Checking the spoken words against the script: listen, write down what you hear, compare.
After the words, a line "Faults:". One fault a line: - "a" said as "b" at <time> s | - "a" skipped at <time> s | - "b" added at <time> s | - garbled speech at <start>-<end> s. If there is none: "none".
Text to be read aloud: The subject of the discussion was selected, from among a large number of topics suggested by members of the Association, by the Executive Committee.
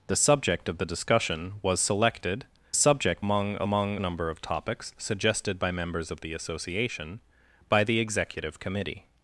The subject of the discussion was selected, subject among a among number of topics suggested by members of the Association, by the Executive Committee.
Faults:
- "from" said as "subject" at 2.7 s
- "large" said as "among" at 3.6 s